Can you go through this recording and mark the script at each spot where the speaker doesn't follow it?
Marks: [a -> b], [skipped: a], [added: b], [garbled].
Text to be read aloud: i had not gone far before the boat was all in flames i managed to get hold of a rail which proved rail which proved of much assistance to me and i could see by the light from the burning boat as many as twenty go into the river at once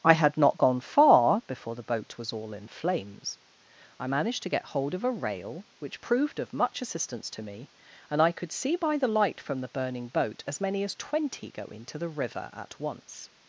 i had not gone far before the boat was all in flames i managed to get hold of a rail which proved [skipped: rail which proved] of much assistance to me and i could see by the light from the burning boat as many as twenty go into the river at once